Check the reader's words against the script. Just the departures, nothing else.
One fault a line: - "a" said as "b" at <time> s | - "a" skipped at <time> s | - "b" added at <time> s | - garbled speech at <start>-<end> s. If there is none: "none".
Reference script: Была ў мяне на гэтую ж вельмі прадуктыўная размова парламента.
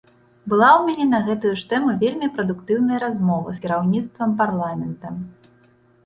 - "тэму" added at 1.7 s
- "з кіраўніцтвам" added at 3.5 s